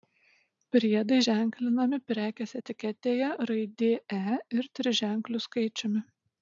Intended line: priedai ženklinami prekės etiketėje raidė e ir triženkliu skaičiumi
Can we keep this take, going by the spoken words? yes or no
yes